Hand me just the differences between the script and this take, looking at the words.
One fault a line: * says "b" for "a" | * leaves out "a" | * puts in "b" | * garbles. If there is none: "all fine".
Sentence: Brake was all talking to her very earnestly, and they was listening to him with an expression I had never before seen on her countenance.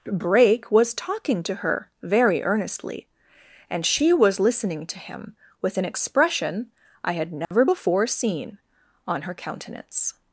* leaves out "all"
* says "she" for "they"